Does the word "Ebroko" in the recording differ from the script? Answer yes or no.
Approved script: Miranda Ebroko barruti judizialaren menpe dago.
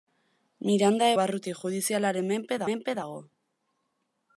yes